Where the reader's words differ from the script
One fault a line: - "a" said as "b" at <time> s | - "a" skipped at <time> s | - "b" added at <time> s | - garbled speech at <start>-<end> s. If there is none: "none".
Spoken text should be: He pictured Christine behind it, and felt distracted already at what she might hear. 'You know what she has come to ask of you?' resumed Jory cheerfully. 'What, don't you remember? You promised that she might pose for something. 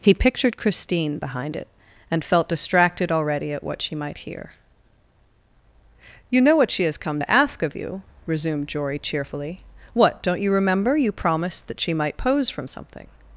- "for" said as "from" at 12.5 s